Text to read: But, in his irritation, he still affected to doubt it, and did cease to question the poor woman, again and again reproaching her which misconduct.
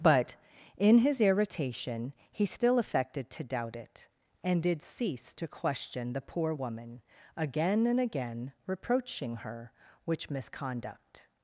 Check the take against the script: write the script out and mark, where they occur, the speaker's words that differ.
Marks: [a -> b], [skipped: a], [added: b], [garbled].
But, in his irritation, he still affected to doubt it, and did cease to question the poor woman, again and again reproaching her which misconduct.